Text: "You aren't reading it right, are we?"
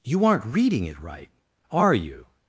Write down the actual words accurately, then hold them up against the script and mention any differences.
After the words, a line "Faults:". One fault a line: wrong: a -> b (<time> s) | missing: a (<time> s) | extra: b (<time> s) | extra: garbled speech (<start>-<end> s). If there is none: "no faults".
"You aren't reading it right, are you?"
Faults:
wrong: we -> you (1.9 s)